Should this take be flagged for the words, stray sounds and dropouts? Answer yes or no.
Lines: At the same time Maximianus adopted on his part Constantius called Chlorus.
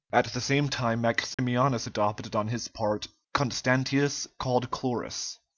yes